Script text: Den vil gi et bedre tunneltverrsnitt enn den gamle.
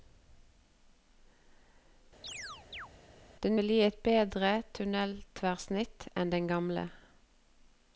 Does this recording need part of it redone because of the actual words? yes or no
no